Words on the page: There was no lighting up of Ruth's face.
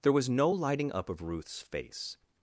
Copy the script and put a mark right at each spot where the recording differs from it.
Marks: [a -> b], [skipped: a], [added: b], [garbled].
There was no lighting up of Ruth's face.